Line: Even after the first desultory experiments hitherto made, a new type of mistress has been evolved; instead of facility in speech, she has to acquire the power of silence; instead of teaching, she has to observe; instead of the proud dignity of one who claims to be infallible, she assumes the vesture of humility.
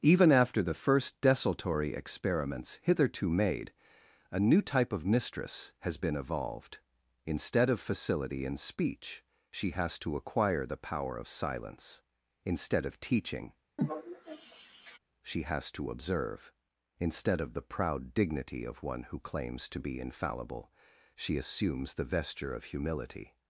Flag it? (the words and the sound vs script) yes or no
yes